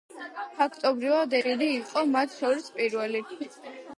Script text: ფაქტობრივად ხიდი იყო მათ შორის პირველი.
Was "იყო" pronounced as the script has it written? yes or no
yes